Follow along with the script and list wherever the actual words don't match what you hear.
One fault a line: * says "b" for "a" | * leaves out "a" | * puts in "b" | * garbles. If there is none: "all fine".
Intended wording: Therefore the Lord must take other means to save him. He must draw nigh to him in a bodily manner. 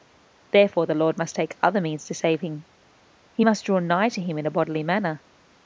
all fine